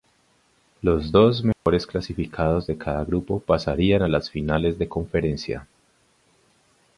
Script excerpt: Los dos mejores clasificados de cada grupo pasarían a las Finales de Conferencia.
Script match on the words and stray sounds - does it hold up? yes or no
no